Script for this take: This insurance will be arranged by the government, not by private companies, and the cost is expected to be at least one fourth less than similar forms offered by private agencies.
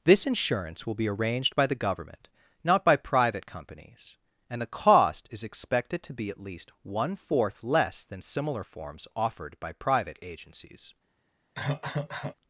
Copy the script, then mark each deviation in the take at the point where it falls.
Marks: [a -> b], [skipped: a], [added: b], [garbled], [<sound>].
This insurance will be arranged by the government, not by private companies, and the cost is expected to be at least one fourth less than similar forms offered by private agencies. [cough]